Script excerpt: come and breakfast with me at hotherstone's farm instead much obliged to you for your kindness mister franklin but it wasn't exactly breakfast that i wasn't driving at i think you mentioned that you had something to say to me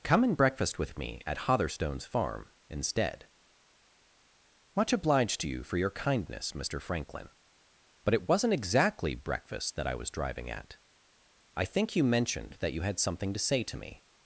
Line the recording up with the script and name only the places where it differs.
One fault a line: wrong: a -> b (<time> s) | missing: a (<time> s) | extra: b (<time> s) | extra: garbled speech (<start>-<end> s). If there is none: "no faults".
wrong: wasn't -> was (9.9 s)